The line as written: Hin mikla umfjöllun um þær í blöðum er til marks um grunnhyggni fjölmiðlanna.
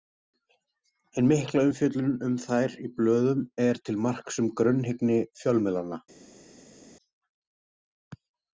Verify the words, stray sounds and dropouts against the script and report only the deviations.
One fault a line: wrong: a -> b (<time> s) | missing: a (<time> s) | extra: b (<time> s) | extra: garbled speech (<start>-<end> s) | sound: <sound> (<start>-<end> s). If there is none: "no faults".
no faults